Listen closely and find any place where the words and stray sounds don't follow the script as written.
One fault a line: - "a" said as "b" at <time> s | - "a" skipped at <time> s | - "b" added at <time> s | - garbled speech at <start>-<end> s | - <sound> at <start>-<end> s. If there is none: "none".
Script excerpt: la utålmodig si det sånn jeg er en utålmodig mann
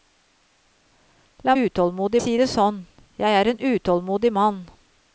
none